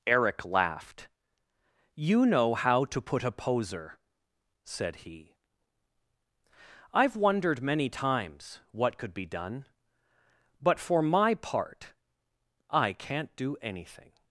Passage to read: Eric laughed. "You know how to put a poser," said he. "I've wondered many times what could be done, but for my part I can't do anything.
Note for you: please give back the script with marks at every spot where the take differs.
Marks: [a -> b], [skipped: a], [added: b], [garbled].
Eric laughed. "You know how to put a poser," said he. "I've wondered many times what could be done, but for my part I can't do anything.